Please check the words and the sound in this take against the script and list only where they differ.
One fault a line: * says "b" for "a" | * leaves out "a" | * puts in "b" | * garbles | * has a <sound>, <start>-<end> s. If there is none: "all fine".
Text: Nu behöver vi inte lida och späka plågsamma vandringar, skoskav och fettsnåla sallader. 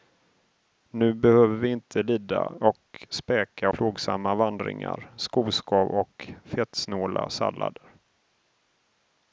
all fine